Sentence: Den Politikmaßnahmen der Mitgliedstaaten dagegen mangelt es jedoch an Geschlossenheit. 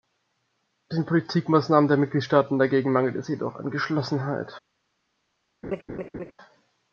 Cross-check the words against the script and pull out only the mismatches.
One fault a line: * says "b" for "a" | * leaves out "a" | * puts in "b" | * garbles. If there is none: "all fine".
all fine